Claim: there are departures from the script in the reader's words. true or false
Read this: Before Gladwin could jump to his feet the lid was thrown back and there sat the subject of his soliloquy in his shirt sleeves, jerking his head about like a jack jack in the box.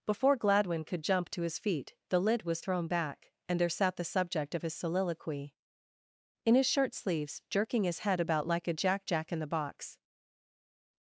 false